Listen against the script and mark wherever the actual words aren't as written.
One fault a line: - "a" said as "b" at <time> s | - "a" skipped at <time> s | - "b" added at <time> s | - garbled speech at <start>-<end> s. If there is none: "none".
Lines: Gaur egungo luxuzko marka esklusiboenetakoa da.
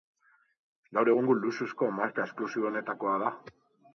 none